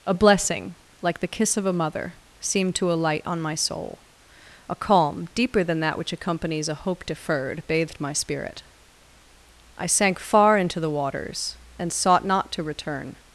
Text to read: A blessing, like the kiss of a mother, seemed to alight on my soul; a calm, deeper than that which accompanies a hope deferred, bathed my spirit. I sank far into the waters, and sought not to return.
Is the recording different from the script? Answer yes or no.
no